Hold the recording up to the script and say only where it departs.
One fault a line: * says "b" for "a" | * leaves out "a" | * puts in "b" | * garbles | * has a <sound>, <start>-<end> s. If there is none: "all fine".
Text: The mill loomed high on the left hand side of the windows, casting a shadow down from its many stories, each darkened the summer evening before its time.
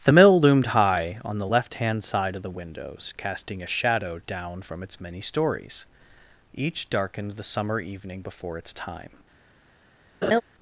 * has a laugh, 10.2-10.4 s